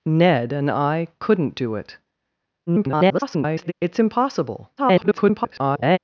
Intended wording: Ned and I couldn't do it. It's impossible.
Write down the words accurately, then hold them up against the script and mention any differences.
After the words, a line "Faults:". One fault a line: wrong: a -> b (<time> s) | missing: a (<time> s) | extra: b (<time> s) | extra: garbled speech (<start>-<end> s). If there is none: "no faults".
Ned and I couldn't do it. [garbled] It's impossible. [garbled]
Faults:
extra: garbled speech (2.7-3.7 s)
extra: garbled speech (4.8-6.0 s)